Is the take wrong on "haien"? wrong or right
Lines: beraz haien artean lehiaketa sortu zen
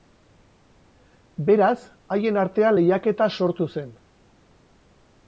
right